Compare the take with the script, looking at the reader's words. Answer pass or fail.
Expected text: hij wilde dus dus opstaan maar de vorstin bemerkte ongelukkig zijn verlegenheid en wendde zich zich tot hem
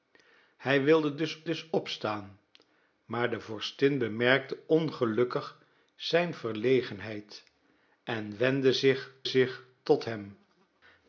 pass